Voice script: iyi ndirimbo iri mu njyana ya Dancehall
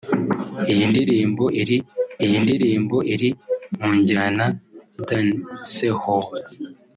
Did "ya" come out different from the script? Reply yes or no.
yes